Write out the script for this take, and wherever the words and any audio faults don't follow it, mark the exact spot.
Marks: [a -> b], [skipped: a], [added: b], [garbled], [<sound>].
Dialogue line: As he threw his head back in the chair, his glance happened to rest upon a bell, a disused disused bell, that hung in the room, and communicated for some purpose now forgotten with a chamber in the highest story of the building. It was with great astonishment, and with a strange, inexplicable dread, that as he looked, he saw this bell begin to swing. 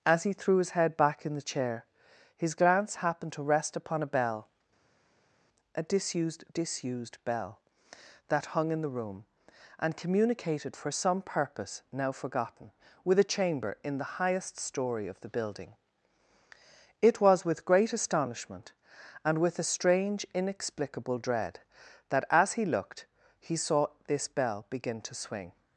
As he threw his head back in the chair, his glance happened to rest upon a bell, a disused disused bell, that hung in the room, and communicated for some purpose now forgotten with a chamber in the highest story of the building. It was with great astonishment, and with a strange, inexplicable dread, that as he looked, he saw this bell begin to swing.